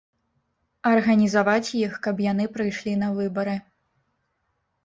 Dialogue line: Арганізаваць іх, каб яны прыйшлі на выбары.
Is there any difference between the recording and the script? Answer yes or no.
no